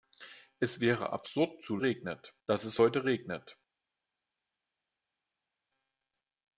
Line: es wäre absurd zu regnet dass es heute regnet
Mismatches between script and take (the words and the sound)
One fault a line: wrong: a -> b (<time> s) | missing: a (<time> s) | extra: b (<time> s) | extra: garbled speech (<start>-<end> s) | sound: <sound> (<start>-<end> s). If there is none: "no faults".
no faults